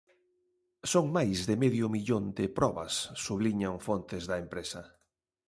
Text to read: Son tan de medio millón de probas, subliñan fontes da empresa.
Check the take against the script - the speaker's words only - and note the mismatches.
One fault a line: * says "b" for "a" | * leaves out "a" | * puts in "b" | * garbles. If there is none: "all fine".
* says "máis" for "tan"